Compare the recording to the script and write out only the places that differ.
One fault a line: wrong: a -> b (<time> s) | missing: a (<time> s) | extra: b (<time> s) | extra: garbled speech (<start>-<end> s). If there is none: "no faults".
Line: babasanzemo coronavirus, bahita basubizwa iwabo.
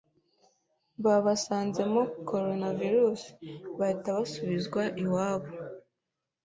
no faults